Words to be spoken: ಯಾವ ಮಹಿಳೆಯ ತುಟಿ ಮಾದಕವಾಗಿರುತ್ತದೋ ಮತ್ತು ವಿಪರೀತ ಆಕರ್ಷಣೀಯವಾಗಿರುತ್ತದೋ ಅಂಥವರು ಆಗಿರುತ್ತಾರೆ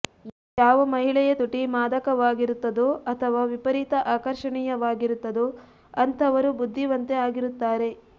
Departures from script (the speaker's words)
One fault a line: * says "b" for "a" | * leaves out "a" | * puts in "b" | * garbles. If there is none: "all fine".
* says "ಅಥವಾ" for "ಮತ್ತು"
* puts in "ಬುದ್ಧಿವಂತೆ"